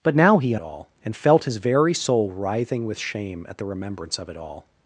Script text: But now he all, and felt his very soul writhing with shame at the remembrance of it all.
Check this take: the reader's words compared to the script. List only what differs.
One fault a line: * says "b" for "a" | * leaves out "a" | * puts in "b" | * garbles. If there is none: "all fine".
all fine